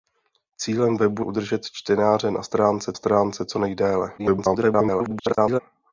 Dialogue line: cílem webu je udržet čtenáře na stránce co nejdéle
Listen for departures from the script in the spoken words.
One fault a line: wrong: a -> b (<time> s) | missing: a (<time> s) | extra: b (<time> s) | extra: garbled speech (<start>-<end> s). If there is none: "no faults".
missing: je (1.2 s)
extra: stránce (2.9 s)
extra: garbled speech (4.2-5.6 s)